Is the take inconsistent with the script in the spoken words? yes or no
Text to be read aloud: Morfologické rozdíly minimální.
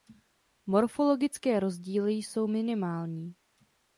yes